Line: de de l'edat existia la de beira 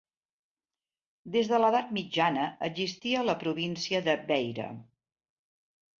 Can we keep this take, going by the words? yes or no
no